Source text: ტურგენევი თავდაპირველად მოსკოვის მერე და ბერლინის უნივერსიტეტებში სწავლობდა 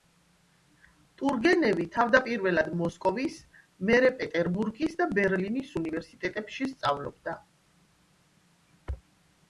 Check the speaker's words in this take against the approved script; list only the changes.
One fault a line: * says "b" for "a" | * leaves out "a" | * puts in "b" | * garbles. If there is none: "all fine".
* puts in "პეტერბურგის"